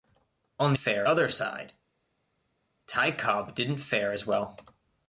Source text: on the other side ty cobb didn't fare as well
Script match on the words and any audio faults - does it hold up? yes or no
no